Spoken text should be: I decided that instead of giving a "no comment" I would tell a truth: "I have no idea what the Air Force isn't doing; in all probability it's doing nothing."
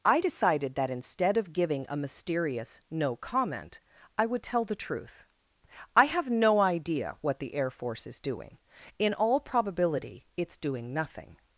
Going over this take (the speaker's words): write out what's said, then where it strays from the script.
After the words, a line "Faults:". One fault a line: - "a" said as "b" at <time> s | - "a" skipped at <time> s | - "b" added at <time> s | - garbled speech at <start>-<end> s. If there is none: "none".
I decided that instead of giving a mysterious "no comment" I would tell the truth: "I have no idea what the Air Force is doing; in all probability it's doing nothing."
Faults:
- "mysterious" added at 2.0 s
- "a" said as "the" at 4.6 s
- "isn't" said as "is" at 8.1 s